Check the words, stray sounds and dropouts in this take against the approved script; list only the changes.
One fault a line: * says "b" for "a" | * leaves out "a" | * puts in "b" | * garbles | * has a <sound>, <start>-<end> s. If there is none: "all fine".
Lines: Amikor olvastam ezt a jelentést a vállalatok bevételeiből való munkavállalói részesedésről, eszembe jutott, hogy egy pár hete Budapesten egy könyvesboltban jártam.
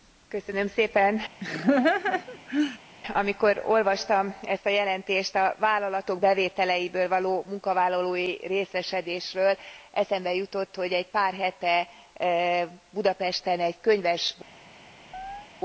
* has a laugh, 1.4-2.8 s
* has a chirp, 15.1-15.5 s